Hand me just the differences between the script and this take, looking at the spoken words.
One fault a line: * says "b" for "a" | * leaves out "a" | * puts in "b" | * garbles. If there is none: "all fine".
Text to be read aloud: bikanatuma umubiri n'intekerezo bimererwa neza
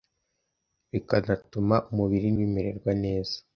* leaves out "n'intekerezo"